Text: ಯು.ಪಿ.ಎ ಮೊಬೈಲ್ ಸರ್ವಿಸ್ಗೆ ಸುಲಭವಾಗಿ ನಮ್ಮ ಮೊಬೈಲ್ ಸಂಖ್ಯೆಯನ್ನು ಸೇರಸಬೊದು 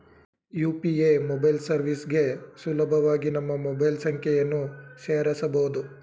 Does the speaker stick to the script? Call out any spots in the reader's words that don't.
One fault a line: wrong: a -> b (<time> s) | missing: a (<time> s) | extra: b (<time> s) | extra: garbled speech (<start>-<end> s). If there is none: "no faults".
no faults